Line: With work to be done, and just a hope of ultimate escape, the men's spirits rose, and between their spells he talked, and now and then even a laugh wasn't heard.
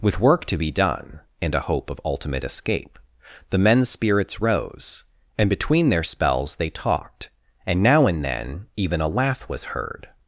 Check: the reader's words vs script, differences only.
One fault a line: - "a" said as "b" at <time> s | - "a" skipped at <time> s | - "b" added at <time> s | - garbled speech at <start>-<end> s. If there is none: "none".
- "just" skipped at 1.5 s
- "he" said as "they" at 6.6 s
- "wasn't" said as "was" at 9.5 s